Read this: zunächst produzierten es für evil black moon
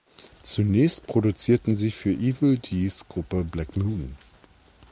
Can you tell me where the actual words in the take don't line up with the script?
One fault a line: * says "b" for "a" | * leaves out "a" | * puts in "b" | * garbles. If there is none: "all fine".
* says "sie" for "es"
* puts in "dees gruppe"